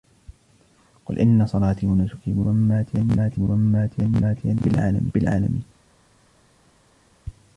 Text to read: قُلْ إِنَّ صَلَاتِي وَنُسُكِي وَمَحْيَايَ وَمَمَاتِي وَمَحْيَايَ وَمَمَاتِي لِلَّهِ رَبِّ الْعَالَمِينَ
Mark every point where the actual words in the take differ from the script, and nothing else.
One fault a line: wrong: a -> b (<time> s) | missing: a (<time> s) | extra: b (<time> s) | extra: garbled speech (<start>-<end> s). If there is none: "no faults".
no faults